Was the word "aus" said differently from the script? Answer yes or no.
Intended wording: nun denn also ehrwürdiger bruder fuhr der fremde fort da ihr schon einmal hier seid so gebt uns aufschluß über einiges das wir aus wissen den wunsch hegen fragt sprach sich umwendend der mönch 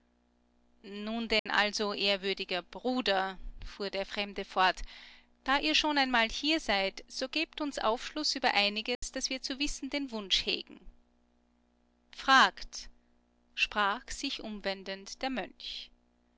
yes